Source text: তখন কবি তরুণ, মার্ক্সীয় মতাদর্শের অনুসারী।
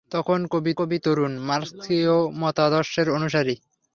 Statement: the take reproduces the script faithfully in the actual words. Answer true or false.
false